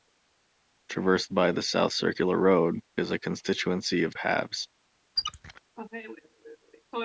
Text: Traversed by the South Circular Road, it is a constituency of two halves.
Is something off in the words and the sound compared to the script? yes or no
yes